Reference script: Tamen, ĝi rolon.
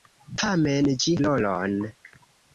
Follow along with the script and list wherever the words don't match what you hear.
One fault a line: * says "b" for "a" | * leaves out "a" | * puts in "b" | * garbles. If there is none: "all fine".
all fine